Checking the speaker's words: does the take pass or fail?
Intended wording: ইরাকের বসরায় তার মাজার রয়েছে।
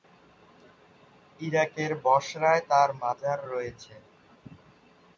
pass